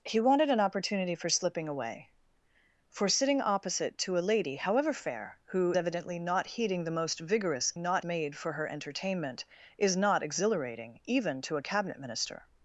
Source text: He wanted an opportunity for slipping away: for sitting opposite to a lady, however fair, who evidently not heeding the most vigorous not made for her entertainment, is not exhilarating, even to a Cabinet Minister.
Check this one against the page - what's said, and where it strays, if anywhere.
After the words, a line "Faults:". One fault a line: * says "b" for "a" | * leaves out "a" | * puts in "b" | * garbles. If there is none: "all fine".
He wanted an opportunity for slipping away: for sitting opposite to a lady, however fair, who evidently not heeding the most vigorous not made for her entertainment, is not exhilarating, even to a Cabinet Minister.
Faults:
all fine